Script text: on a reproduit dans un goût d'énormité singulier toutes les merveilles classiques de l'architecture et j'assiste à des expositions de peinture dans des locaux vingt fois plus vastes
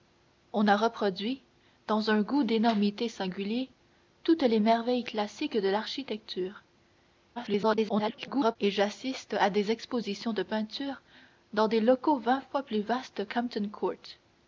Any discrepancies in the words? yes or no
yes